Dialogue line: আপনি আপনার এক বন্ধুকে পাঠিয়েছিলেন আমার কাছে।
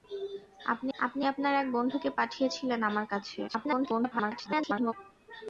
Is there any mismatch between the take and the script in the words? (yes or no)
yes